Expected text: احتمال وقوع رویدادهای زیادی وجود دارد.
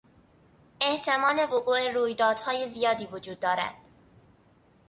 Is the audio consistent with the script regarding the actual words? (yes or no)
yes